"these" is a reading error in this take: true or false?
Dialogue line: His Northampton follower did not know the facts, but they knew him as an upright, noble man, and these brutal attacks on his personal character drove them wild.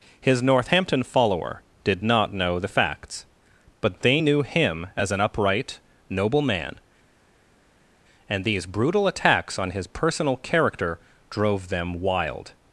false